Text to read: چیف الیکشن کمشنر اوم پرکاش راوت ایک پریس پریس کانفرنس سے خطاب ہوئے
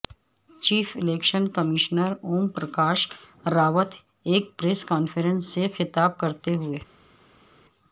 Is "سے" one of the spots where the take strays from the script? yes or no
no